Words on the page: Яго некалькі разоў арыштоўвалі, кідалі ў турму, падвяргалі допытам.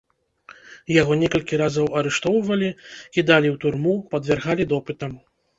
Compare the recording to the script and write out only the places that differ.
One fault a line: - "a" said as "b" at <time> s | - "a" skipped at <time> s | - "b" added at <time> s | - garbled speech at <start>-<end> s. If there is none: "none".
none